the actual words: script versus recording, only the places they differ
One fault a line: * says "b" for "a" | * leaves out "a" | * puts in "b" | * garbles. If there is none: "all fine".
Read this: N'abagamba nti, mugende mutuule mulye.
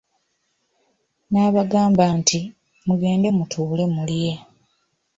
all fine